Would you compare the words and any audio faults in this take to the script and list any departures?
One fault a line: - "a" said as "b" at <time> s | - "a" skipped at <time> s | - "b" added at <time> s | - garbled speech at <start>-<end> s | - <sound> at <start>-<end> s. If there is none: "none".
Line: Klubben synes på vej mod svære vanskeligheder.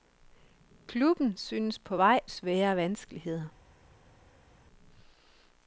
- "mod" skipped at 2.2 s